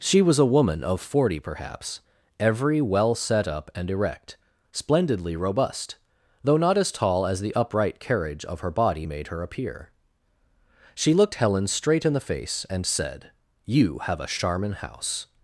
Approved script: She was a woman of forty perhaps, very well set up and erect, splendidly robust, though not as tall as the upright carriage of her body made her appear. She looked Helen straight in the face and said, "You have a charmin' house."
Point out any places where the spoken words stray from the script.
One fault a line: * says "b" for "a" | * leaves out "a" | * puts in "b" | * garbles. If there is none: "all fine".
* says "every" for "very"